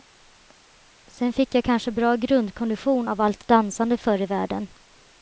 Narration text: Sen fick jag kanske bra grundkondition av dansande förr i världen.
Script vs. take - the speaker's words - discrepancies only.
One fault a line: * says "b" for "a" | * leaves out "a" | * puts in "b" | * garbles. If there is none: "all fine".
* puts in "allt"